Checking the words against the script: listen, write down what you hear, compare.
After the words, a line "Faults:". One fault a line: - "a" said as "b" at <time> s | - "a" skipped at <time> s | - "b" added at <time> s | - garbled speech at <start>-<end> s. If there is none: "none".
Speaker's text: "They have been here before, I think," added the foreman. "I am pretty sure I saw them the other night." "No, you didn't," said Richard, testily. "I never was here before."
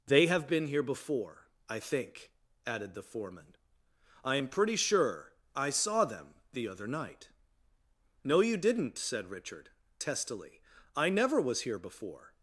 "They have been here before, I think," added the foreman. "I am pretty sure I saw them the other night." "No, you didn't," said Richard, testily. "I never was here before."
Faults:
none